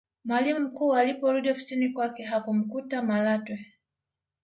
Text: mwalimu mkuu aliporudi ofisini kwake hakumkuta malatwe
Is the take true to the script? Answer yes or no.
yes